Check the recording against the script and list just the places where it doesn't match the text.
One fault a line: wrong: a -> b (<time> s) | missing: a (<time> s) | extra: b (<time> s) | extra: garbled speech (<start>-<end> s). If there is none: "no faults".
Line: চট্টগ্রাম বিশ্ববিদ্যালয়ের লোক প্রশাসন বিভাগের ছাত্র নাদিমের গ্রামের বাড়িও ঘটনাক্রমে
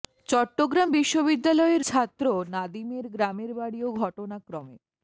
missing: লোক প্রশাসন বিভাগের (1.8 s)